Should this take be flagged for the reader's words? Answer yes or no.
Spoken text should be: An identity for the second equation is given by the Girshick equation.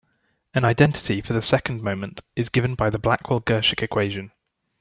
yes